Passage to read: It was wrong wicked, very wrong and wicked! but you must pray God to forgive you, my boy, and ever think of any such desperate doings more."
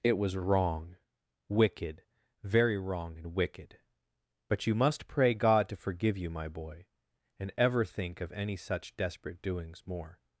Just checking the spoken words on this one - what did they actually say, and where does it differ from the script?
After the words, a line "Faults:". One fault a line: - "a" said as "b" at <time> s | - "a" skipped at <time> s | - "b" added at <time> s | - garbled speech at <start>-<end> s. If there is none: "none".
It was wrong wicked, very wrong and wicked! but you must pray God to forgive you, my boy, and ever think of any such desperate doings more."
Faults:
none